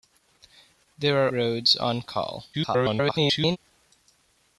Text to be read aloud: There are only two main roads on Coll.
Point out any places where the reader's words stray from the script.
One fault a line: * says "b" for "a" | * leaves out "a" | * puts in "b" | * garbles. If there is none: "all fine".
* leaves out "only two main"
* garbles